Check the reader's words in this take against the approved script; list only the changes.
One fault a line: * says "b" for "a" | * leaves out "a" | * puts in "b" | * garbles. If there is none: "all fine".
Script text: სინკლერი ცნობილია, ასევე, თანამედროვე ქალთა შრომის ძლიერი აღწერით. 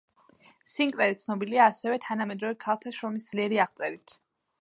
all fine